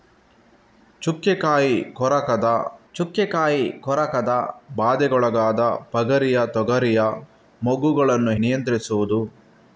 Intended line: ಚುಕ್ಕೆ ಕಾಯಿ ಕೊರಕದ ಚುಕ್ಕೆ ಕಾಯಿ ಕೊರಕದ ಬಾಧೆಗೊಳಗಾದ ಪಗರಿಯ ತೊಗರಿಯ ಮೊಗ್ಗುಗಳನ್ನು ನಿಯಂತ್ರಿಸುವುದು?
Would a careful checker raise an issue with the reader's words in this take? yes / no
no